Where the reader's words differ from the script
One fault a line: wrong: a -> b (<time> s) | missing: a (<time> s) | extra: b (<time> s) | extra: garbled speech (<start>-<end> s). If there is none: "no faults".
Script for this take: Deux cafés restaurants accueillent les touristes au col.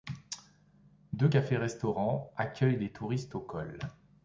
no faults